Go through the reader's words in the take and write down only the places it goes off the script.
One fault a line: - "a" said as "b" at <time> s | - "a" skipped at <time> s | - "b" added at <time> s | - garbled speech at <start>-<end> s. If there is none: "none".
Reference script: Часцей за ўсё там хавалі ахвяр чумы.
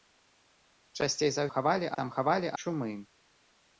- "ўсё" said as "хавалі" at 1.5 s
- "ахвяр" skipped at 2.5 s